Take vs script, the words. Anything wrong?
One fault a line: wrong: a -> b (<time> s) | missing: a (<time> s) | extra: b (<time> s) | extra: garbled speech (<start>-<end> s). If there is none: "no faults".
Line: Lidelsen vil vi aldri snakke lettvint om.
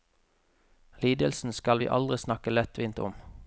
wrong: vil -> skal (1.5 s)